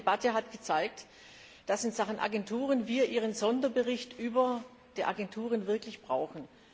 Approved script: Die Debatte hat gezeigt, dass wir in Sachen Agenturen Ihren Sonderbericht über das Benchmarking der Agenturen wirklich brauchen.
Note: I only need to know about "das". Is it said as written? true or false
false